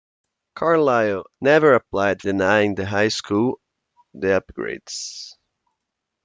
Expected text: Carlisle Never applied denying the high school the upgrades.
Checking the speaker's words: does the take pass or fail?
pass